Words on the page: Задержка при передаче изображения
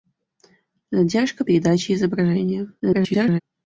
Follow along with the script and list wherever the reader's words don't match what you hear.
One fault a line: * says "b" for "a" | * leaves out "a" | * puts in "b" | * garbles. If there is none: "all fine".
* leaves out "при"
* garbles